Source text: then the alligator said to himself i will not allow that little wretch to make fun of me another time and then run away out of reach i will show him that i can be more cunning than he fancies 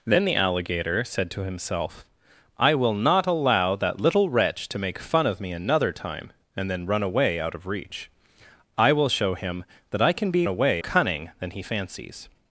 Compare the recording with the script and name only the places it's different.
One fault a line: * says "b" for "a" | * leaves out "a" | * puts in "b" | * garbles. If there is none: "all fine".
* says "away" for "more"